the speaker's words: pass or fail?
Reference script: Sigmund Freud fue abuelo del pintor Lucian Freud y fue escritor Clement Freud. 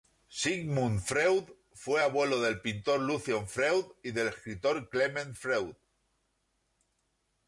fail